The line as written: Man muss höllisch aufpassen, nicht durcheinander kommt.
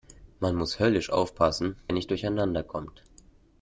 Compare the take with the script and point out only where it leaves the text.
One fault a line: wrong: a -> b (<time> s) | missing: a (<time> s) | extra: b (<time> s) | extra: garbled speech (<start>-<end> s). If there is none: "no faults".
no faults